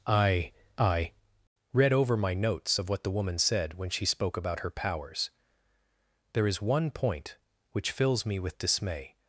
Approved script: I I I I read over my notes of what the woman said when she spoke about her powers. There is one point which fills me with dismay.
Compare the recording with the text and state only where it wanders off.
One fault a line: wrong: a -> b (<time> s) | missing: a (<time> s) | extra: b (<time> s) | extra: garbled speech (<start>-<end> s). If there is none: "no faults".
missing: I I (1.1 s)